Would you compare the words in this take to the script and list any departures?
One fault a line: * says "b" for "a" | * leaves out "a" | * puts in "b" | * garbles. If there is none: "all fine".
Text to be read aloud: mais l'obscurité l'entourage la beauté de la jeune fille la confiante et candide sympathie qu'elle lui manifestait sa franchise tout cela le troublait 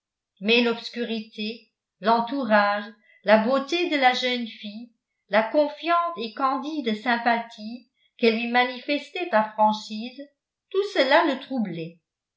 all fine